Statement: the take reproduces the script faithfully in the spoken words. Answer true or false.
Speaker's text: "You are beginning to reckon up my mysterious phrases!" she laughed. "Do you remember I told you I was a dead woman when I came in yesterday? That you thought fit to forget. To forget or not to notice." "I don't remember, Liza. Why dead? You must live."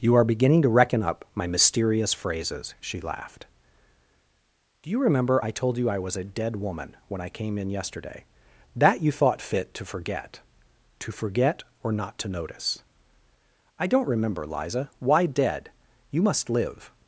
true